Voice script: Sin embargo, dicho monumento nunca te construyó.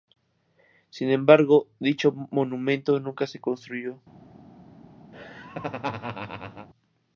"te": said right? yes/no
no